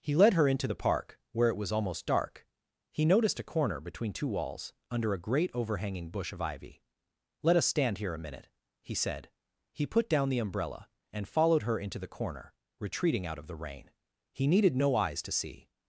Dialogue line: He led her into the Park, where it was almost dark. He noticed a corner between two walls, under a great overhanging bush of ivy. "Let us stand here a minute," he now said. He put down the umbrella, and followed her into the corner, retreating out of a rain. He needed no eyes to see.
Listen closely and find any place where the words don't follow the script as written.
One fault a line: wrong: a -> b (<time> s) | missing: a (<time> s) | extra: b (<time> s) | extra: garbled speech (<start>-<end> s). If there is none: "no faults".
missing: now (8.9 s)
wrong: a -> the (13.5 s)